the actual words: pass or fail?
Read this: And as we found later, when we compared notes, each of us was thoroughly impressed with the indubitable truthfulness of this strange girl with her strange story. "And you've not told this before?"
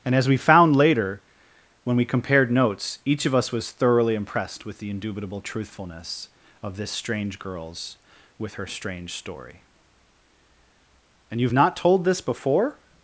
fail